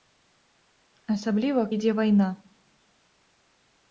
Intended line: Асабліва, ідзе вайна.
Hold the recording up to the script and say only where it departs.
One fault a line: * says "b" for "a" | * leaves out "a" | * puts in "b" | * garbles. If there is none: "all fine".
all fine